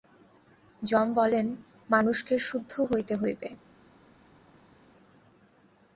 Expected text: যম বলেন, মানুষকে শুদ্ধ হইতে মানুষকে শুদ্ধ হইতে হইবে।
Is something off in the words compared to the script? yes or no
yes